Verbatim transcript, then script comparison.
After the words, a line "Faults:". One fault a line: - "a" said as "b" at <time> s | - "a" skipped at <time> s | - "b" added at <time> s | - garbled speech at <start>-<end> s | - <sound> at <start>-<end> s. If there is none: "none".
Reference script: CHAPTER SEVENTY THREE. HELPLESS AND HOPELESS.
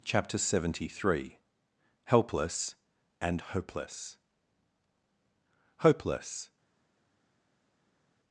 CHAPTER SEVENTY THREE. HELPLESS AND HOPELESS HOPELESS.
Faults:
- "HOPELESS" added at 5.8 s